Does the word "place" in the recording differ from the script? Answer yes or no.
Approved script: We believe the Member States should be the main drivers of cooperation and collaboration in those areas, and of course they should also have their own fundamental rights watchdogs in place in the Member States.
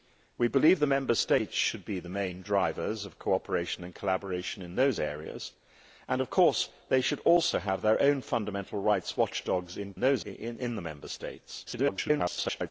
yes